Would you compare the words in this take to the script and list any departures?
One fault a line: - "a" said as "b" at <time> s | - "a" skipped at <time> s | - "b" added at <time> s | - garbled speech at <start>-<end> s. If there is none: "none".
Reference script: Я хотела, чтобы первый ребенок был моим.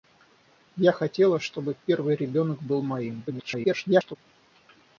- garbled speech at 3.3-4.2 s